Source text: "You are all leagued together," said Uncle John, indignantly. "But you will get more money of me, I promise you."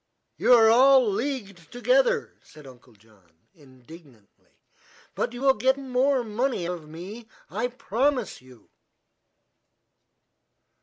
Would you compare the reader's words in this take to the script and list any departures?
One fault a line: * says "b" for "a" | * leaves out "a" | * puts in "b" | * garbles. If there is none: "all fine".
all fine